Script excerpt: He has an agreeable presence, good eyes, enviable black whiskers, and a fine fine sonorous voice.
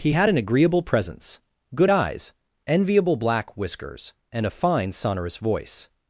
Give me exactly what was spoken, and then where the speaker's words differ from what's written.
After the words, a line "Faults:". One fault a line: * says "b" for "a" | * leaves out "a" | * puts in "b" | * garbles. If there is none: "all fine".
He had an agreeable presence, good eyes, enviable black whiskers, and a fine sonorous voice.
Faults:
* says "had" for "has"
* leaves out "fine"